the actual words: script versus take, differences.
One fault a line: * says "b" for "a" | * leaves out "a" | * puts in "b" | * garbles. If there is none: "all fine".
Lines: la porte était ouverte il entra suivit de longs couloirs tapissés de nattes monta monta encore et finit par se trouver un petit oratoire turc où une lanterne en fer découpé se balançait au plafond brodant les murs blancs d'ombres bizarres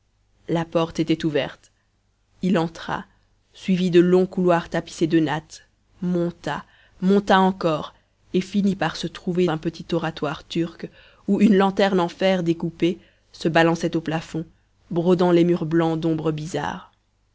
all fine